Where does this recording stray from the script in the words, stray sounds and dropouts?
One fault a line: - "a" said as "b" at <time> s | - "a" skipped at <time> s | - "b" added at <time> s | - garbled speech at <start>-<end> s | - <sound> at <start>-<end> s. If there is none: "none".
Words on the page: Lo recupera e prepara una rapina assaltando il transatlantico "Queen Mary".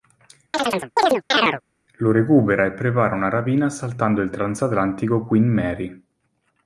- chirp at 0.5-1.6 s